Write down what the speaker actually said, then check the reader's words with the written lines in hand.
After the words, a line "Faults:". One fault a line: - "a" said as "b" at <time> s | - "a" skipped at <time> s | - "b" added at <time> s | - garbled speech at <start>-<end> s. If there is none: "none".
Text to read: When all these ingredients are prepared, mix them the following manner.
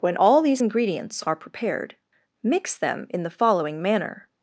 When all these ingredients are prepared, mix them in the following manner.
Faults:
- "in" added at 3.1 s